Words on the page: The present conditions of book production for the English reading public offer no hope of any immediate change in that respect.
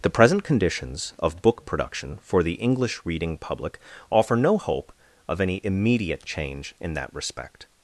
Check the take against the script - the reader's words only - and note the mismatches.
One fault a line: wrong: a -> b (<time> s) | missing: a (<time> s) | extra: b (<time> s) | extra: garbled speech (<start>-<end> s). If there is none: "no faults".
no faults